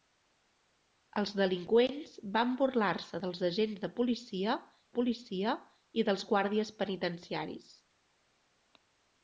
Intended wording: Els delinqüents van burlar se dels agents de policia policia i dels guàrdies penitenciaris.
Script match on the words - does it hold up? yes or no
yes